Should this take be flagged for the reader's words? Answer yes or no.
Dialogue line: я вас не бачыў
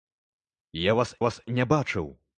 yes